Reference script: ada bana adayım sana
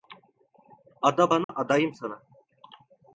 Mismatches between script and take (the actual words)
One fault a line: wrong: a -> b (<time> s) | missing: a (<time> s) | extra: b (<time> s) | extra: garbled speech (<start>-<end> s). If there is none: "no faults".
no faults